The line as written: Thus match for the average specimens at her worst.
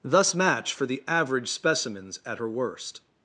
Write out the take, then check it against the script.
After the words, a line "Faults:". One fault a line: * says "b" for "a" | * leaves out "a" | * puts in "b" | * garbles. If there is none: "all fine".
Thus match for the average specimens at her worst.
Faults:
all fine